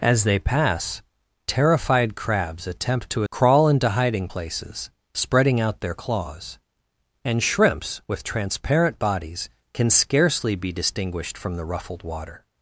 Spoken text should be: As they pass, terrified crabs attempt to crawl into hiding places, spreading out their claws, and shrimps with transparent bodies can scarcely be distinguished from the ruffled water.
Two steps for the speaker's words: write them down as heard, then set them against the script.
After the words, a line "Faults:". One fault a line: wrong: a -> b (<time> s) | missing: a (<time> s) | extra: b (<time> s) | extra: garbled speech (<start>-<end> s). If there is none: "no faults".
As they pass, terrified crabs attempt to crawl into hiding places, spreading out their claws, and shrimps with transparent bodies can scarcely be distinguished from the ruffled water.
Faults:
no faults